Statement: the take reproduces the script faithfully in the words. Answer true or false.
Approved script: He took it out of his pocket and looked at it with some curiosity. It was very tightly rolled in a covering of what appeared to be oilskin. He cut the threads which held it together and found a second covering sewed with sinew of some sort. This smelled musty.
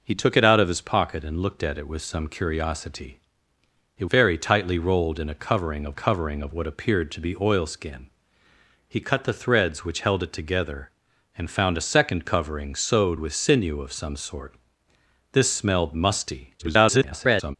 false